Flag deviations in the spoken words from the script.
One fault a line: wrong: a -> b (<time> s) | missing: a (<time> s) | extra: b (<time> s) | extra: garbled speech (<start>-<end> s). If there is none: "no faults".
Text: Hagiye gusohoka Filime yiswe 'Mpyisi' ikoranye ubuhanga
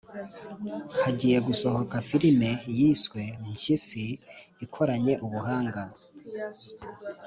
no faults